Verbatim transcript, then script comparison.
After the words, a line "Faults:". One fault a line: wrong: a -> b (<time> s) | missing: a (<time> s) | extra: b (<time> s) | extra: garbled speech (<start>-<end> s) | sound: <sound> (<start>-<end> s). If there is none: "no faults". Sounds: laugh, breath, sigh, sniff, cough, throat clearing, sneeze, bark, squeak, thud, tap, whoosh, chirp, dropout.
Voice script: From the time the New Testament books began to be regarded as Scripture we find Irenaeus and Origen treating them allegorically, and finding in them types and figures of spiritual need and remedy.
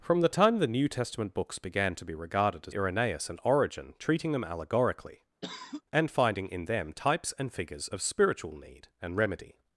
From the time the New Testament books began to be regarded as Irenaeus and Origen treating them allegorically, and finding in them types and figures of spiritual need and remedy.
Faults:
missing: Scripture we find (2.8 s)
sound: cough (5.4-5.8 s)